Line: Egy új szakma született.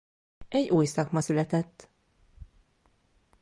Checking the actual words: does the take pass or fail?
pass